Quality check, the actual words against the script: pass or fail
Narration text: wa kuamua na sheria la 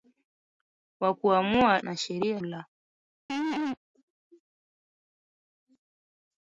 pass